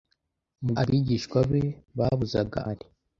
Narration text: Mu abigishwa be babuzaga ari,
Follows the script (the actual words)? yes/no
yes